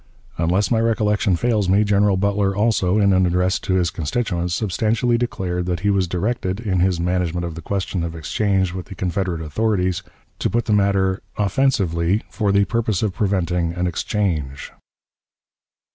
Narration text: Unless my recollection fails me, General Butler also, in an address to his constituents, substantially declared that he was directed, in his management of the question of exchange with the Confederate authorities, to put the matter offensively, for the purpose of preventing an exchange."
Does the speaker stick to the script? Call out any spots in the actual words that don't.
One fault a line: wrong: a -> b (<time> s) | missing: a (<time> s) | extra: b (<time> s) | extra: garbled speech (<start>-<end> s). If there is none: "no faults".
no faults